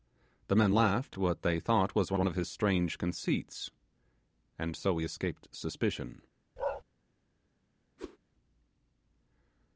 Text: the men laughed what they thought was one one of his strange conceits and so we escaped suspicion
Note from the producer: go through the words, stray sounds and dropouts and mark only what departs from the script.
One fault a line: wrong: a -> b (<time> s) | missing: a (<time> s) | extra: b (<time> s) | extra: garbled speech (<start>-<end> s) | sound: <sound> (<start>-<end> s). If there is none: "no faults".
sound: bark (6.6-6.8 s)
sound: whoosh (8.0-8.2 s)